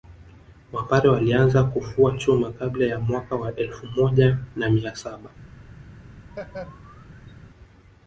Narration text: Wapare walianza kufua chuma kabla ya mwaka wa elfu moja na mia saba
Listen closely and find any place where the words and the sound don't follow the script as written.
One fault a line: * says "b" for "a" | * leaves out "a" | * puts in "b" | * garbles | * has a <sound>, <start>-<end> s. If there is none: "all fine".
* has a laugh, 6.3-7.3 s